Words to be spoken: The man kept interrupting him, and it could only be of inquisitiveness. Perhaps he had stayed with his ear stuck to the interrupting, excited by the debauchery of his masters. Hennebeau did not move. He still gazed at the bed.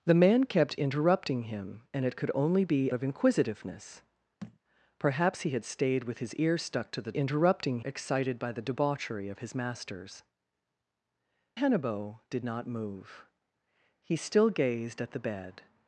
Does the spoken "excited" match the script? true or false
true